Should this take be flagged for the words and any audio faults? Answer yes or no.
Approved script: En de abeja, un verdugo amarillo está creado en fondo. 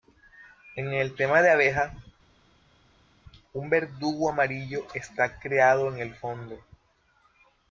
yes